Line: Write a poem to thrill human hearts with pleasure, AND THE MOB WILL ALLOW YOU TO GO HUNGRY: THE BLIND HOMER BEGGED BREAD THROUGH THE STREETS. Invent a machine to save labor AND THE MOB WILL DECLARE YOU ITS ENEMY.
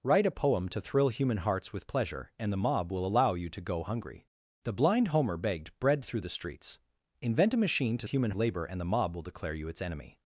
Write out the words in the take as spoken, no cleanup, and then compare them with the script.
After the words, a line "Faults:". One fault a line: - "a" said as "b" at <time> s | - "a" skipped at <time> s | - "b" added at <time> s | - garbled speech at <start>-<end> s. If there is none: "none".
Write a poem to thrill human hearts with pleasure, AND THE MOB WILL ALLOW YOU TO GO HUNGRY: THE BLIND HOMER BEGGED BREAD THROUGH THE STREETS. Invent a machine to human labor AND THE MOB WILL DECLARE YOU ITS ENEMY.
Faults:
- "save" said as "human" at 8.0 s